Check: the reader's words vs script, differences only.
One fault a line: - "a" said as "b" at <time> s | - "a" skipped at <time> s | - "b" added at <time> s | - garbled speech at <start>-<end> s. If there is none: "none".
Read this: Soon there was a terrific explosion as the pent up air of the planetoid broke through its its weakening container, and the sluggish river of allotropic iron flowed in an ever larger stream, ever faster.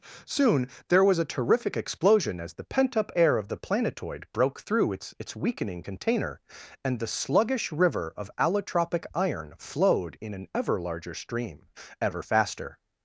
none